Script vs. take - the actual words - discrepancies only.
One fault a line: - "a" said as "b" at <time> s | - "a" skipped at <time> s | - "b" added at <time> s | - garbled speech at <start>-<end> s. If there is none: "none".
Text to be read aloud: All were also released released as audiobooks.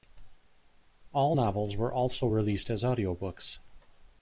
- "novels" added at 1.3 s
- "released" skipped at 2.7 s